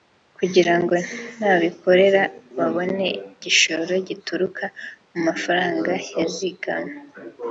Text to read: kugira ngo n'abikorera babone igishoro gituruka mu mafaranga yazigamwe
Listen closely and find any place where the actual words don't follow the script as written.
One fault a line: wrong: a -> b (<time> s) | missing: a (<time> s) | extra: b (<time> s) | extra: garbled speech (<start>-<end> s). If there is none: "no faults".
no faults